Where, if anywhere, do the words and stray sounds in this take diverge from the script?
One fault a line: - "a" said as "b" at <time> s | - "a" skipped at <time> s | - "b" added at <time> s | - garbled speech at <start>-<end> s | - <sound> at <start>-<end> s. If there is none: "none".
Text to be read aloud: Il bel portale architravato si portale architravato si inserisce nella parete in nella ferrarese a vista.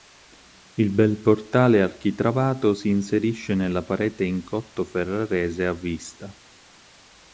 - "portale architravato si" skipped at 2.9 s
- "nella" said as "cotto" at 4.4 s